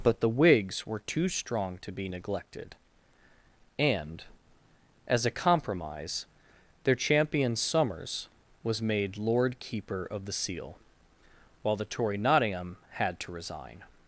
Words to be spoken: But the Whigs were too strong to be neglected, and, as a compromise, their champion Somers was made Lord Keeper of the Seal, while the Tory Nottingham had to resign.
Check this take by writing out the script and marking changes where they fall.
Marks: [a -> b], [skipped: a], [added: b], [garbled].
But the Whigs were too strong to be neglected, and, as a compromise, their champion Somers was made Lord Keeper of the Seal, while the Tory Nottingham had to resign.